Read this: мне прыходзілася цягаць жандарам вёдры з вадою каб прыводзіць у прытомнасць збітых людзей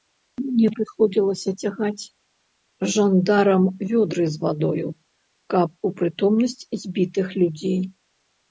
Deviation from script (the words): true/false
true